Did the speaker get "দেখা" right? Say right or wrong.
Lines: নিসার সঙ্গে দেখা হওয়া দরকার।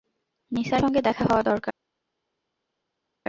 right